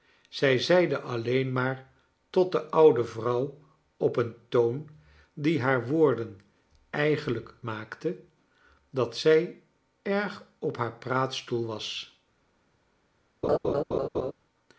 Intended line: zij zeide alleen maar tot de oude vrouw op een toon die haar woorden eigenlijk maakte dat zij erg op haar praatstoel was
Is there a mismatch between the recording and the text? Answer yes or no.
no